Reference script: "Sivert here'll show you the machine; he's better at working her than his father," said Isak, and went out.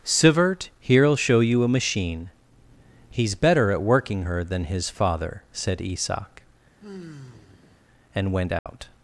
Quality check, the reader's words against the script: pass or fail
fail